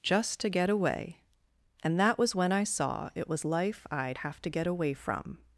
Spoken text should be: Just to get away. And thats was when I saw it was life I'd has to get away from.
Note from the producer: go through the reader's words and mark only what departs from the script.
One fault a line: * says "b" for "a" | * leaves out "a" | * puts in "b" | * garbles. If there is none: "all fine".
* says "that" for "thats"
* says "have" for "has"